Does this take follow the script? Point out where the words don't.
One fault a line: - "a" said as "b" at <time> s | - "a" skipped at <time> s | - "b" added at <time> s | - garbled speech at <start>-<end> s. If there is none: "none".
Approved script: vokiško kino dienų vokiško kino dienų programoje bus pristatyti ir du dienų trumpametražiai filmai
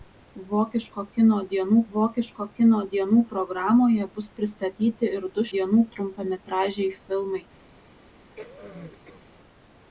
none